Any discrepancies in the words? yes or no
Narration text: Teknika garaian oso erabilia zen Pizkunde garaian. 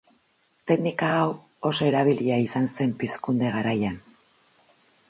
yes